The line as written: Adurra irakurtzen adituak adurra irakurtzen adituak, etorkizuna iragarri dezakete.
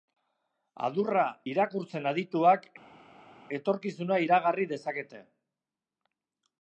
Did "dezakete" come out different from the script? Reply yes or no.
no